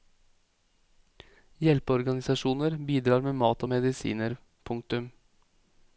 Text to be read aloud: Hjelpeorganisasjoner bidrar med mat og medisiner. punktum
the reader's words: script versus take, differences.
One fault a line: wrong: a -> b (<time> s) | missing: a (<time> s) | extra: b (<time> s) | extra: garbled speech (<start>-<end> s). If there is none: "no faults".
no faults